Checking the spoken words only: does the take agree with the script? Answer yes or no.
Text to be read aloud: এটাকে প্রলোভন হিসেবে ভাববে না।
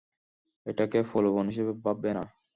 yes